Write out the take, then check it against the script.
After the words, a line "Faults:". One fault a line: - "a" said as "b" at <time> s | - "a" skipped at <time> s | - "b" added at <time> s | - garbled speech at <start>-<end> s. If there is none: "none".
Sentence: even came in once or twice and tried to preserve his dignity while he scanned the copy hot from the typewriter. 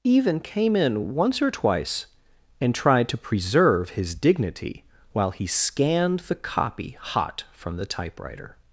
even came in once or twice and tried to preserve his dignity while he scanned the copy hot from the typewriter.
Faults:
none